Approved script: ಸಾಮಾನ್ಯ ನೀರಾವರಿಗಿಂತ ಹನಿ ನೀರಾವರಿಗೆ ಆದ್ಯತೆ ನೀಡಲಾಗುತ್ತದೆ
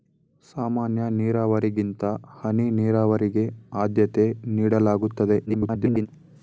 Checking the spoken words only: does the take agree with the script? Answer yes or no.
no